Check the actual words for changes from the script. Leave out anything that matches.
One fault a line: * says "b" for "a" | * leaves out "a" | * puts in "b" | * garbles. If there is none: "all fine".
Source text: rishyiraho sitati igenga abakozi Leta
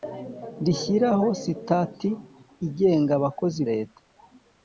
all fine